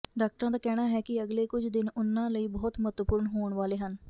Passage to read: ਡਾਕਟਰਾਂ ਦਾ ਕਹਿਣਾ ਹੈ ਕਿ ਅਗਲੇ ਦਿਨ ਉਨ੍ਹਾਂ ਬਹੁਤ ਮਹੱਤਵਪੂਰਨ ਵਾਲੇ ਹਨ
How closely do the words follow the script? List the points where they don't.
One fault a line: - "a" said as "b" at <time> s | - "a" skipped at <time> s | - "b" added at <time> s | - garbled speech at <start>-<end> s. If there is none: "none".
- "ਕੁਝ" added at 1.5 s
- "ਲਈ" added at 2.3 s
- "ਹੋਣ" added at 3.3 s